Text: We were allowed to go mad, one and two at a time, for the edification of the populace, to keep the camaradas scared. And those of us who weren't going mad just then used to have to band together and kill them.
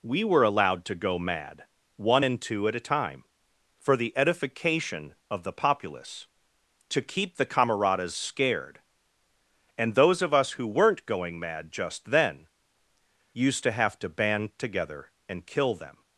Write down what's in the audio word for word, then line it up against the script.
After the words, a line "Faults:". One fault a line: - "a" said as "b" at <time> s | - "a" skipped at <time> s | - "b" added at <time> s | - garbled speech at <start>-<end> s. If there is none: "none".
We were allowed to go mad, one and two at a time, for the edification of the populace, to keep the camaradas scared. And those of us who weren't going mad just then used to have to band together and kill them.
Faults:
none